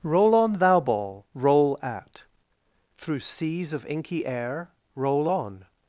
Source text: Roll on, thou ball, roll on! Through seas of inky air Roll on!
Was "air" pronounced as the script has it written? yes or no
yes